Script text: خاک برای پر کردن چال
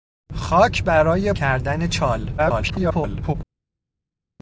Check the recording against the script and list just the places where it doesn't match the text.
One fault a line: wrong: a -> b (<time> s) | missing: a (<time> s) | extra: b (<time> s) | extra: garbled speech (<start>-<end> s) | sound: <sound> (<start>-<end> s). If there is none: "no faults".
missing: پر (1.3 s)
extra: garbled speech (2.4-3.4 s)